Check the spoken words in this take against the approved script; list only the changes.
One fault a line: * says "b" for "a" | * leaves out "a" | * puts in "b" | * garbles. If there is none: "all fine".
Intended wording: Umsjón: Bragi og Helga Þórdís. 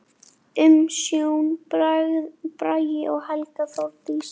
all fine